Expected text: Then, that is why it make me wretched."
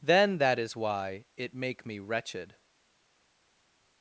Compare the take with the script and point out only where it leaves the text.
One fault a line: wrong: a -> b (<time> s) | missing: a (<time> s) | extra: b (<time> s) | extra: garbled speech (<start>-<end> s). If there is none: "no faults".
no faults